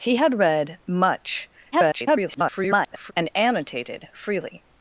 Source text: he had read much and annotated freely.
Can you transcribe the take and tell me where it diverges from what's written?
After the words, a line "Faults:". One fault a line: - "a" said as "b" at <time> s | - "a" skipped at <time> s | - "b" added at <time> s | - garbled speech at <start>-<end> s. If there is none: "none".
he had read much [garbled] and annotated freely.
Faults:
- garbled speech at 1.7-3.1 s